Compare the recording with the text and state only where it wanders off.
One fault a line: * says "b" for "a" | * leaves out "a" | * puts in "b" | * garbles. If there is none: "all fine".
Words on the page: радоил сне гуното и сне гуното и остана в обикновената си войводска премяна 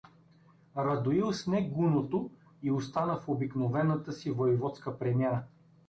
* leaves out "сне гуното и"